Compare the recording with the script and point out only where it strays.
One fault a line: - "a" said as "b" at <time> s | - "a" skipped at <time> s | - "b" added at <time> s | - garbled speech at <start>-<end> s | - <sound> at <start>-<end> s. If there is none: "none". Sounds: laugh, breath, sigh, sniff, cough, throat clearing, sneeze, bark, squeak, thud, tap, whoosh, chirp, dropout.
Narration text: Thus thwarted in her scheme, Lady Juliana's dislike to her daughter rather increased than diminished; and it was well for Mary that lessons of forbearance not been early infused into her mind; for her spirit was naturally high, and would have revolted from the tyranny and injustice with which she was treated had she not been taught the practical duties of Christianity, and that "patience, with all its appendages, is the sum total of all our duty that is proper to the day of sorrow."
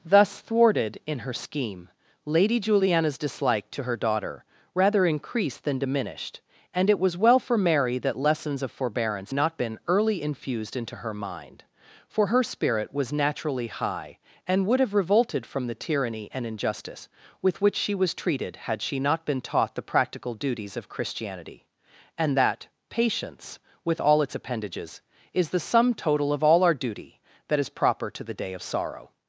none